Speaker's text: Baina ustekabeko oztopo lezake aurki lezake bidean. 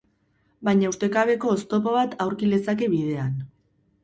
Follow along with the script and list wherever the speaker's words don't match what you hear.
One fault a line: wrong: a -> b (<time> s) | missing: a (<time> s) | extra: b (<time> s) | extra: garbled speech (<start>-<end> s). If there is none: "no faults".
wrong: lezake -> bat (2.0 s)